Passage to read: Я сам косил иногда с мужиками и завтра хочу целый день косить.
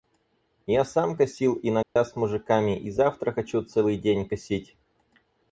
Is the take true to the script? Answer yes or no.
yes